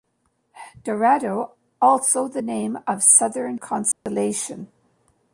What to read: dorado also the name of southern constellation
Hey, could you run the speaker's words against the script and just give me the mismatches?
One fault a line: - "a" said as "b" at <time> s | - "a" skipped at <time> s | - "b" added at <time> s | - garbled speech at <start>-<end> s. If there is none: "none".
none